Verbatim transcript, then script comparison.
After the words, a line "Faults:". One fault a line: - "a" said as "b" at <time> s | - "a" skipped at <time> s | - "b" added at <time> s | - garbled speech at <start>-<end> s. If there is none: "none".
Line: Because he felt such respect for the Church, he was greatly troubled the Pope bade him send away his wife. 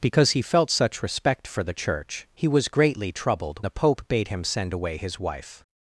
Because he felt such respect for the Church, he was greatly troubled the Pope bade him send away his wife.
Faults:
none